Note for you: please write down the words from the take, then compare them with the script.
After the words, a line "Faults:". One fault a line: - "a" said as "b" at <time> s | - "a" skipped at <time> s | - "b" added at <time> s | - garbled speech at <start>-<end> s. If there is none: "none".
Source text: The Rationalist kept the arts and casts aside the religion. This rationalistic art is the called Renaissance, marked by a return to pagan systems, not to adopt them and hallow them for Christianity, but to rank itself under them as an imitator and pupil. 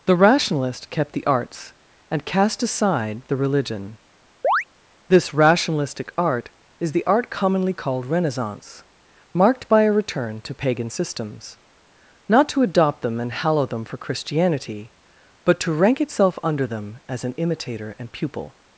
The Rationalist kept the arts and cast aside the religion. This rationalistic art is the art commonly called Renaissance, marked by a return to pagan systems, not to adopt them and hallow them for Christianity, but to rank itself under them as an imitator and pupil.
Faults:
- "casts" said as "cast" at 2.2 s
- "art commonly" added at 7.0 s